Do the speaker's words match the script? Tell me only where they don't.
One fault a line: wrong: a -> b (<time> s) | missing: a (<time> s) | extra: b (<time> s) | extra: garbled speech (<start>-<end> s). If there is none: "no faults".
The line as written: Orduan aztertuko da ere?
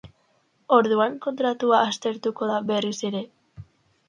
extra: kontratua (1.2 s)
extra: berriz (2.7 s)